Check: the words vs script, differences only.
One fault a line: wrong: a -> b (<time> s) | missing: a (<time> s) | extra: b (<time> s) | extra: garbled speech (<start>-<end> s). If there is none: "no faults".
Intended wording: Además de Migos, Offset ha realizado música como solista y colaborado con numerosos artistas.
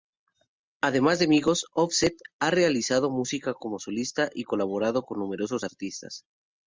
no faults